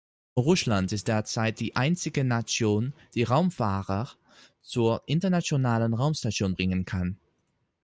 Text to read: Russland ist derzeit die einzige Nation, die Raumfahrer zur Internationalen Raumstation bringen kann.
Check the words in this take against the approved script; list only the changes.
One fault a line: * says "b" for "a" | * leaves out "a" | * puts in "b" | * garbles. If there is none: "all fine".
all fine